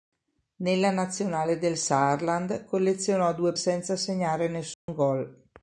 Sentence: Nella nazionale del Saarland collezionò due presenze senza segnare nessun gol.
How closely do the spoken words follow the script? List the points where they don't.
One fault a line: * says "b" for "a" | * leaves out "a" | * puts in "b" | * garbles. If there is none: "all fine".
* leaves out "presenze"